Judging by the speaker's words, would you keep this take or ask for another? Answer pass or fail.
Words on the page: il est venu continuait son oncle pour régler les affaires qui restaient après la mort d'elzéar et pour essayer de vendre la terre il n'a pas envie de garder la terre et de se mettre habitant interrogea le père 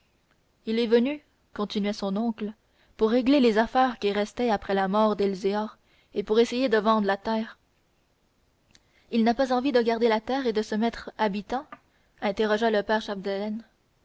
pass